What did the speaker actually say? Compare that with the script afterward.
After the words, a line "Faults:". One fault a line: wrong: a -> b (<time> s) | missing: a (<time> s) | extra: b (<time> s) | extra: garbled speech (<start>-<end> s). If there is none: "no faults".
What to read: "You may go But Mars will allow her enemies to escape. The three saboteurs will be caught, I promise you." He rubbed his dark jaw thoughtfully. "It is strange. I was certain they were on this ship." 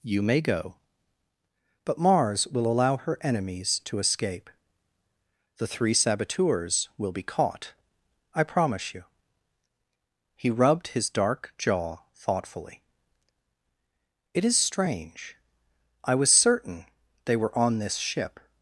"You may go But Mars will allow her enemies to escape. The three saboteurs will be caught, I promise you." He rubbed his dark jaw thoughtfully. "It is strange. I was certain they were on this ship."
Faults:
no faults